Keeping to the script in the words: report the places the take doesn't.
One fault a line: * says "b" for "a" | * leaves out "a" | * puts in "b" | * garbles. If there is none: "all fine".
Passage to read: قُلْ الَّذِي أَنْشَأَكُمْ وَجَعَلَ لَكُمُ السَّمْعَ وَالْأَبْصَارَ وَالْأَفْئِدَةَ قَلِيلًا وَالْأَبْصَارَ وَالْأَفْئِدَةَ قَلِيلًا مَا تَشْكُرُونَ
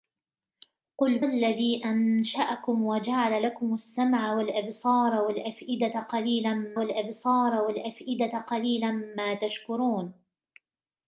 all fine